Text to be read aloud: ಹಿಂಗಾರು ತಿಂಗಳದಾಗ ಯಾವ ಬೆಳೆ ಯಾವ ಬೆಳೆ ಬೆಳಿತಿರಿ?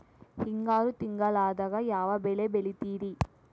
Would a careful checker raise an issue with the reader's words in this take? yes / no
yes